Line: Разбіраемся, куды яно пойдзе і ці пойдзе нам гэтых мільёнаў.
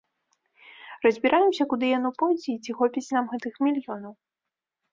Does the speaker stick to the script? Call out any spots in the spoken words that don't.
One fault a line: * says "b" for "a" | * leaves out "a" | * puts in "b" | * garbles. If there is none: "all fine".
* says "хопіць" for "пойдзе"